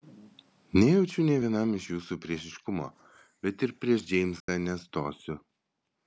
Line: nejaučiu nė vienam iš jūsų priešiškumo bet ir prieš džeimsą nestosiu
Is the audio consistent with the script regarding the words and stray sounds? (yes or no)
no